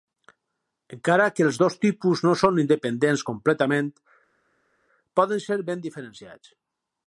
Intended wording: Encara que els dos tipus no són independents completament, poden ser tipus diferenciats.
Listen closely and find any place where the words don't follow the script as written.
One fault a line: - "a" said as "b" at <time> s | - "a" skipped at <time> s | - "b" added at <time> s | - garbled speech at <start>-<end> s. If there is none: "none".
- "tipus" said as "ben" at 5.7 s